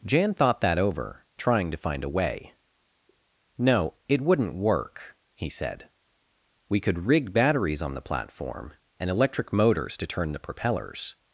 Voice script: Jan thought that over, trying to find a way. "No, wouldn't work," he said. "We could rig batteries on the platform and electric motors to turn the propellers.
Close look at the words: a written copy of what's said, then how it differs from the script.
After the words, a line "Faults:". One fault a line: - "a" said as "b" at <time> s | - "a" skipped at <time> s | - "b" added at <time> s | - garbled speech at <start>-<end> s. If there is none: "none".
Jan thought that over, trying to find a way. "No, it wouldn't work," he said. "We could rig batteries on the platform and electric motors to turn the propellers.
Faults:
- "it" added at 4.1 s